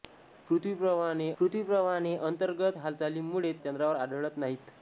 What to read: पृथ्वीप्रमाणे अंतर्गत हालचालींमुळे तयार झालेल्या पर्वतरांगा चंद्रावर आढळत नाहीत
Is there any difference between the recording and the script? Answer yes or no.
yes